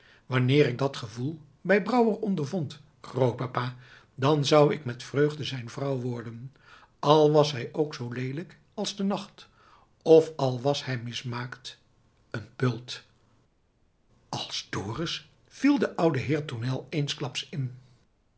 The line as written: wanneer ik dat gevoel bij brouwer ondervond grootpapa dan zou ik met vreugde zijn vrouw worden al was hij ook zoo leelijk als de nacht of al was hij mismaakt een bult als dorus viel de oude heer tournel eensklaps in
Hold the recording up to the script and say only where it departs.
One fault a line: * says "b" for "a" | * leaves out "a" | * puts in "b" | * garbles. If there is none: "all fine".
all fine